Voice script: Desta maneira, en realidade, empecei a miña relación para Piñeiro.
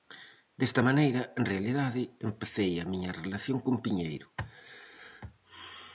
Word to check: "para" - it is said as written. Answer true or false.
false